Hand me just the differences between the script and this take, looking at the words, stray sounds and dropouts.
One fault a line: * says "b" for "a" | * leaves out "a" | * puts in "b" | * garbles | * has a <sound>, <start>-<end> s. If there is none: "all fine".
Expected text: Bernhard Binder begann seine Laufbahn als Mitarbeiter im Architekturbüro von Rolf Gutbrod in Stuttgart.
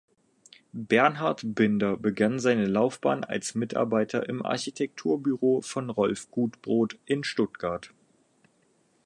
all fine